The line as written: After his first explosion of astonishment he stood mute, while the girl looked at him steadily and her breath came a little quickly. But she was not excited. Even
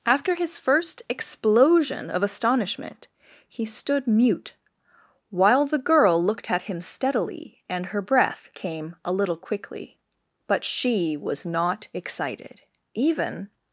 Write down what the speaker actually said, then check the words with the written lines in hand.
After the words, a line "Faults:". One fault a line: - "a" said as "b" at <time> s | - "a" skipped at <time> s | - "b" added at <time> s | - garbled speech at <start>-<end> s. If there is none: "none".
After his first explosion of astonishment he stood mute, while the girl looked at him steadily and her breath came a little quickly. But she was not excited. Even
Faults:
none